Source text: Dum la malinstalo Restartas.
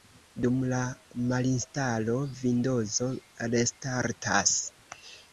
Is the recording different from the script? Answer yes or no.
yes